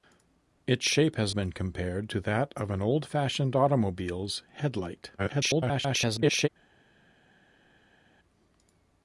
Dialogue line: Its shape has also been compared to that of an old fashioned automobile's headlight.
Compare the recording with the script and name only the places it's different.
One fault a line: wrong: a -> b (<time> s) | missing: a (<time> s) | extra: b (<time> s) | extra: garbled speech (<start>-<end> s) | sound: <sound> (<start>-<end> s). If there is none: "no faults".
missing: also (1.4 s)
extra: garbled speech (5.2-6.5 s)